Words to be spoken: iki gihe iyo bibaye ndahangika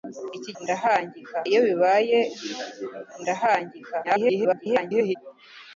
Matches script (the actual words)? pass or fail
fail